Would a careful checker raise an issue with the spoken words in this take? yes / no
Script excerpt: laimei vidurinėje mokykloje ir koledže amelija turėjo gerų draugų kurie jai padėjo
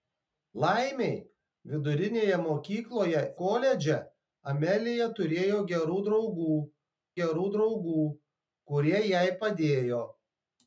yes